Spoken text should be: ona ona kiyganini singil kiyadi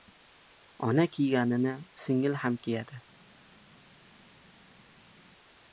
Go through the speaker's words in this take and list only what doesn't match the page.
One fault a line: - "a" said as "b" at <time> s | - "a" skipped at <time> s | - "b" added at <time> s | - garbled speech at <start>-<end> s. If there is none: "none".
- "ona" skipped at 1.1 s
- "ham" added at 2.3 s